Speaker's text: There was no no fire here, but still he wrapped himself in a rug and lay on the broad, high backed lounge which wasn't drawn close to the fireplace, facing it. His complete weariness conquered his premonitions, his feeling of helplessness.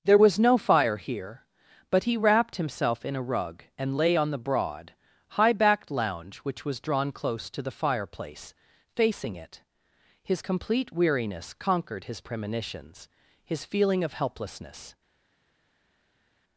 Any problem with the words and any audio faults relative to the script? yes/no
yes